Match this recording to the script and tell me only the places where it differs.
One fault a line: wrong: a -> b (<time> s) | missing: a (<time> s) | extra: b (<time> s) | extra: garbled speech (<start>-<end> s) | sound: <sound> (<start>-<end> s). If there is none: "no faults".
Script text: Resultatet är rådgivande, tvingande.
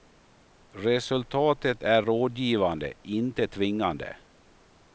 extra: inte (3.0 s)